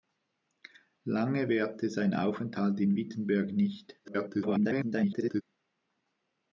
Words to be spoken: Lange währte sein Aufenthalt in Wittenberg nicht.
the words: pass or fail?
fail